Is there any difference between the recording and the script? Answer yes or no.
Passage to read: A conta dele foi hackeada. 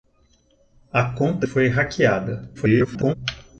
yes